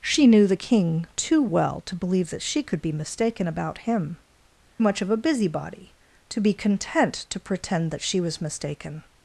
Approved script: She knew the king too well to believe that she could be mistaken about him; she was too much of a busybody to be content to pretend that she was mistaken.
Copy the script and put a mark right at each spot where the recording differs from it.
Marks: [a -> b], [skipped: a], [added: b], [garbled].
She knew the king too well to believe that she could be mistaken about him; [skipped: she was too] much of a busybody to be content to pretend that she was mistaken.